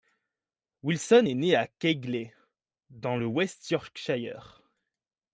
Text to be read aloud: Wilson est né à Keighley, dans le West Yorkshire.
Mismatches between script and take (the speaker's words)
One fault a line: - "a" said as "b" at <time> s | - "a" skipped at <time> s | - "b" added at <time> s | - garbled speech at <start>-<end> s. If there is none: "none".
none